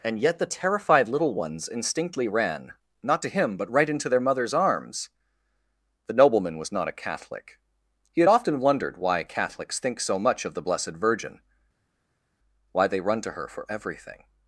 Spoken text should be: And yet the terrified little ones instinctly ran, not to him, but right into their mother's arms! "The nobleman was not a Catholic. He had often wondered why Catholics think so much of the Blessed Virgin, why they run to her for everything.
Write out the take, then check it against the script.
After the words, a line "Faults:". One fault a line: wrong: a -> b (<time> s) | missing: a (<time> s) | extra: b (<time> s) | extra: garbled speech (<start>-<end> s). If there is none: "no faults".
And yet the terrified little ones instinctly ran, not to him, but right into their mother's arms! "The nobleman was not a Catholic. He had often wondered why Catholics think so much of the Blessed Virgin, why they run to her for everything.
Faults:
no faults